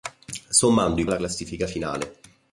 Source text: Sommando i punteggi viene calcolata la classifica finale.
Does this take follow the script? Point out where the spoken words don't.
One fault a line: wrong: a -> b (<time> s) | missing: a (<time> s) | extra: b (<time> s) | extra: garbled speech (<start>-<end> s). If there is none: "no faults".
missing: punteggi viene calcolata (1.1 s)